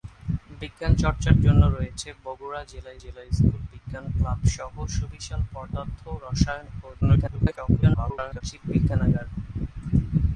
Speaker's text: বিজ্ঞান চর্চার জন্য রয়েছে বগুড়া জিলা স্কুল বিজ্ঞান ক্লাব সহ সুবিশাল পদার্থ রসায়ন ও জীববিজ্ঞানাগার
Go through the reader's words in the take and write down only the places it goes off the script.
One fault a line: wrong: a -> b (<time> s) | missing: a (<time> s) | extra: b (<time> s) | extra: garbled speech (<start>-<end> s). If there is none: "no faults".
extra: জিলা (3.0 s)
extra: garbled speech (7.0-8.4 s)